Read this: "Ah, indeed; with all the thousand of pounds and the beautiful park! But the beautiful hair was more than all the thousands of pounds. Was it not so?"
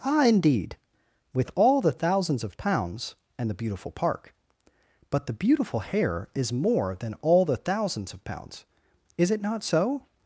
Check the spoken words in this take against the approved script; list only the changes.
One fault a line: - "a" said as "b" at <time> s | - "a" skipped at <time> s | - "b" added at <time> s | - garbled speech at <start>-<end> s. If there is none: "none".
- "thousand" said as "thousands" at 1.9 s
- "was" said as "is" at 6.3 s
- "Was" said as "Is" at 9.2 s